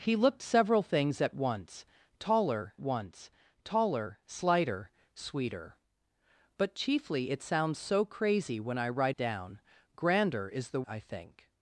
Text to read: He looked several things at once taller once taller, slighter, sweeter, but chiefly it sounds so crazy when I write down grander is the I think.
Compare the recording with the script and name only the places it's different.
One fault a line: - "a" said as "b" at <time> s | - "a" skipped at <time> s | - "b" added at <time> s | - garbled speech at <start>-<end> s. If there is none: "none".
none